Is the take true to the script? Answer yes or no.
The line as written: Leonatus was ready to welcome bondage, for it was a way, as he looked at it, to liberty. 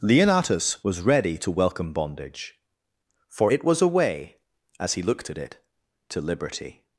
yes